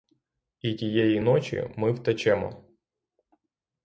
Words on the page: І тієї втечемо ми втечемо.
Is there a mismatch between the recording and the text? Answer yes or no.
yes